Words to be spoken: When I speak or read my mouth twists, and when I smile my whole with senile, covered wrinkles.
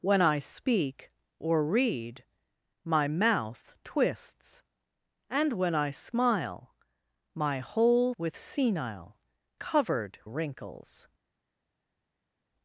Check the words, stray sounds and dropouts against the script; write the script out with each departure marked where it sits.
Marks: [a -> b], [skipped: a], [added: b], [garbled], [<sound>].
When I speak or read my mouth twists, and when I smile my whole with senile, covered wrinkles.